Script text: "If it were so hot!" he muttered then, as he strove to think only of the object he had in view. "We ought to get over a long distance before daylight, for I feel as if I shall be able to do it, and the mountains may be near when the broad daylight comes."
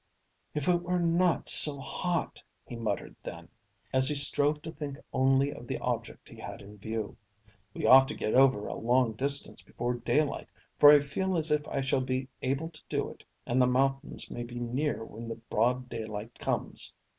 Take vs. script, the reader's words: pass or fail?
fail